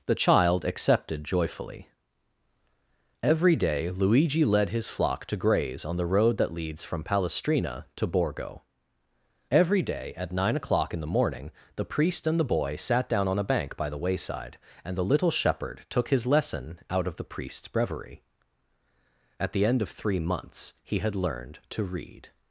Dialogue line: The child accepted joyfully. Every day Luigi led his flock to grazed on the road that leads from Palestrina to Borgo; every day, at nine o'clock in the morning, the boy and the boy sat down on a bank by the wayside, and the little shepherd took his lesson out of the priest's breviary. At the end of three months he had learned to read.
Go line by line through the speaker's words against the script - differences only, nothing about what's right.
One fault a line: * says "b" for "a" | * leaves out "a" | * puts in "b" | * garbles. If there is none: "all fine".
* says "graze" for "grazed"
* says "priest" for "boy"